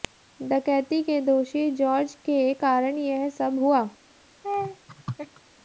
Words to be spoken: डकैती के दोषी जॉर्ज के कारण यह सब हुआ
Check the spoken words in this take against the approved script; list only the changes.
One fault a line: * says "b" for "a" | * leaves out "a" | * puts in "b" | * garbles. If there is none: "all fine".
all fine